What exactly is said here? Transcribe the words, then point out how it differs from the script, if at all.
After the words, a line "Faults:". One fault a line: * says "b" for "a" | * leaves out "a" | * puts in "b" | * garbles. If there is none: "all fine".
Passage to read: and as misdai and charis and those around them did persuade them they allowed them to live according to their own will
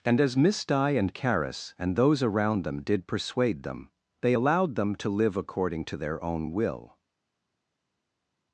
and as misdai and charis and those around them did persuade them they allowed them to live according to their own will
Faults:
all fine